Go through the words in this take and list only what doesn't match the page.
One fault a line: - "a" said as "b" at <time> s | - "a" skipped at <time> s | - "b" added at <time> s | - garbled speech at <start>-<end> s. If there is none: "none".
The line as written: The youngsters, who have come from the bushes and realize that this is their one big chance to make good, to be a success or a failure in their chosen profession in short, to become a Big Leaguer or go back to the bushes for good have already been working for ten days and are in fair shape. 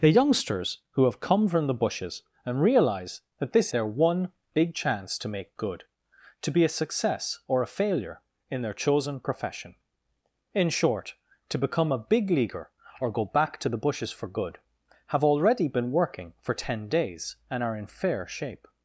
- "is" skipped at 3.7 s